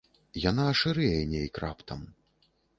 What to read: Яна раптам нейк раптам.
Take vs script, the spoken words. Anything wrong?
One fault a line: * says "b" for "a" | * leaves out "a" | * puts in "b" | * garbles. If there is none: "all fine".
* says "шырэе" for "раптам"